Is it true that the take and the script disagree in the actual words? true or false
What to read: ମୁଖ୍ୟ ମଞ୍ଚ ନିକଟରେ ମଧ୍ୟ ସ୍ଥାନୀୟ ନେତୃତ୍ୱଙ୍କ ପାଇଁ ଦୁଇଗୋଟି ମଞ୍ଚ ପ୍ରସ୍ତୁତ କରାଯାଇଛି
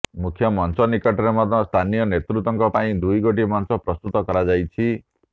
false